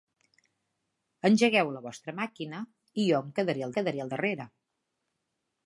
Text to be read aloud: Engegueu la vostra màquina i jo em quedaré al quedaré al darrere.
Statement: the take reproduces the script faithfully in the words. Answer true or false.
true